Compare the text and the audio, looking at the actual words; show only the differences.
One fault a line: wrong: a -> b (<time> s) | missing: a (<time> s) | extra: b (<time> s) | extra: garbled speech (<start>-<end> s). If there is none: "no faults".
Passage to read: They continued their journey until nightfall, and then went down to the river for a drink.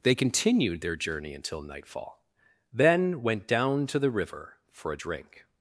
missing: and (2.2 s)